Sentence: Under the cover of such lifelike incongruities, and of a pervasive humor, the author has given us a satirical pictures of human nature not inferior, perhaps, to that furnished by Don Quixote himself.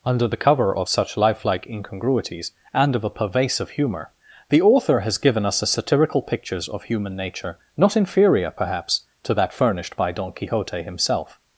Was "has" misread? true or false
false